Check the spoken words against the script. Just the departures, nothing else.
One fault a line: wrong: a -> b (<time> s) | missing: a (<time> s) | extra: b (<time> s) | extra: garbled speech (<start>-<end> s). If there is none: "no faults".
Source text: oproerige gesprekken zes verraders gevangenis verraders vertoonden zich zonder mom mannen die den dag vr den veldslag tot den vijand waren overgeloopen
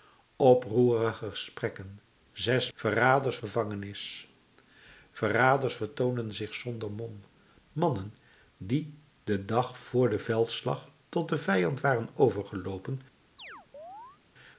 no faults